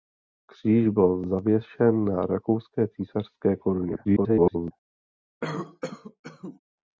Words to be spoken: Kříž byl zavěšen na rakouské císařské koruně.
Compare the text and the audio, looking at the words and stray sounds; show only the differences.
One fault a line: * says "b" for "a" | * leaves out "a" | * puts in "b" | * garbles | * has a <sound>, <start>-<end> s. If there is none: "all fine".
* garbles
* has a cough, 5.4-6.6 s